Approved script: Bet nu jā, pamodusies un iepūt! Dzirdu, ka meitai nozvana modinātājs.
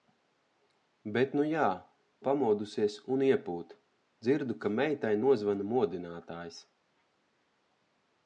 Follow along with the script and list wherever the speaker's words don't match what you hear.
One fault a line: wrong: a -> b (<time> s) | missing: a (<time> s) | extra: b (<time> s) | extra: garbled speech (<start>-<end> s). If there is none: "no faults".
no faults